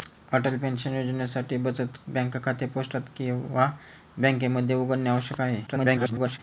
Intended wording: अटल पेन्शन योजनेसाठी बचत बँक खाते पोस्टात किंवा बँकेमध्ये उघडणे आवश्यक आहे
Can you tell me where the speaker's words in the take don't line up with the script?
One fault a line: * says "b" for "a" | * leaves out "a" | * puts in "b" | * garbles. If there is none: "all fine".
* garbles